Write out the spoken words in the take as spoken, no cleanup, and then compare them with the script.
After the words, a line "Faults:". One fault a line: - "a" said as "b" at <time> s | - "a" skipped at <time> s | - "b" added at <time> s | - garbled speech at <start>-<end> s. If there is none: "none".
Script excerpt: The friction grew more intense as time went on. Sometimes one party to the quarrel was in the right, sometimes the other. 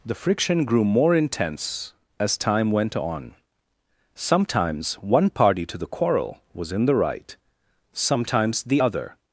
The friction grew more intense as time went on. Sometimes one party to the quarrel was in the right, sometimes the other.
Faults:
none